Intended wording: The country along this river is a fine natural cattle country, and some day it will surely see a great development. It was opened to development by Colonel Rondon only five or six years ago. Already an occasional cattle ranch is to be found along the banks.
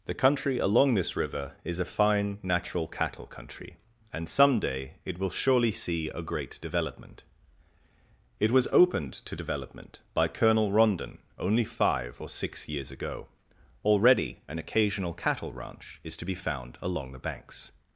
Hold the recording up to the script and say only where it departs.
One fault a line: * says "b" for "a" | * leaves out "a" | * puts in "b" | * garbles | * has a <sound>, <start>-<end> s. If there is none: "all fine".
all fine